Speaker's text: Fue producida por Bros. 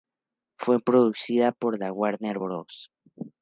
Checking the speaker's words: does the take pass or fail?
fail